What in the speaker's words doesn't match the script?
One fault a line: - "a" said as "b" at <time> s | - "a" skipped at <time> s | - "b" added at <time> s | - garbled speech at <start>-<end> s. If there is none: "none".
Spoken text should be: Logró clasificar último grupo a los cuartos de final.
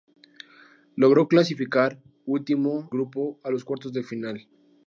none